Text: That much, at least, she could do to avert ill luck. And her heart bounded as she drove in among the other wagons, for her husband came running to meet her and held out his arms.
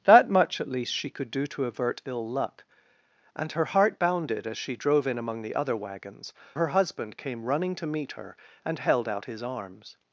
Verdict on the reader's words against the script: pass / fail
fail